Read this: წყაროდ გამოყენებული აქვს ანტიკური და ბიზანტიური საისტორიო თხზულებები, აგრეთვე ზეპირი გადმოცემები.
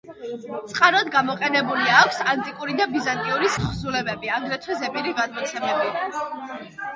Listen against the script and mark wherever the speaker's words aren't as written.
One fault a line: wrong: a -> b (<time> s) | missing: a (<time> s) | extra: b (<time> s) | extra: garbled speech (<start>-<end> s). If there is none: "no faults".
missing: საისტორიო (3.5 s)